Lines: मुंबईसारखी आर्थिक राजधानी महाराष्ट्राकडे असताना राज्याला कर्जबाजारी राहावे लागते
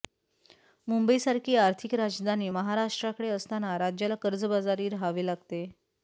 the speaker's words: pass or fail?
pass